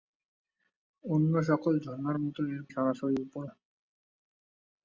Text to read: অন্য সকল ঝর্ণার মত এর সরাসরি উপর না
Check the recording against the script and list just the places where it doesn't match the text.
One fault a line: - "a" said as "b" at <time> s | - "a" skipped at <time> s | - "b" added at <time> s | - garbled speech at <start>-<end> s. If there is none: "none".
none